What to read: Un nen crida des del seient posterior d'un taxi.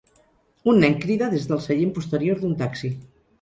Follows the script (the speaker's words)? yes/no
yes